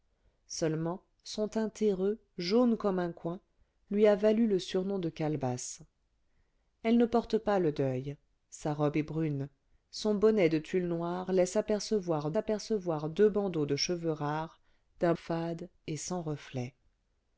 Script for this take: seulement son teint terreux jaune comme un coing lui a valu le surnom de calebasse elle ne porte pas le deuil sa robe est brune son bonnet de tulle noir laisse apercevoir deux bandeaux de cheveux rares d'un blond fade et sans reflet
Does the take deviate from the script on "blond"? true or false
true